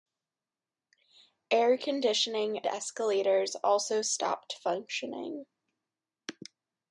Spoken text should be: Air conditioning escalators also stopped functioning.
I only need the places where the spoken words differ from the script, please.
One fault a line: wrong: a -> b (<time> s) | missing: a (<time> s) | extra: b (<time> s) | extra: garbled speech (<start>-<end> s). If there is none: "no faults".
no faults